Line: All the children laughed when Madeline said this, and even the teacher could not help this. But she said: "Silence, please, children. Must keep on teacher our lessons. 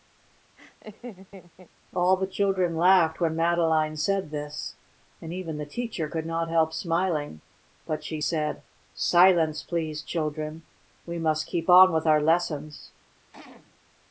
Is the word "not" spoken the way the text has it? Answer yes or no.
yes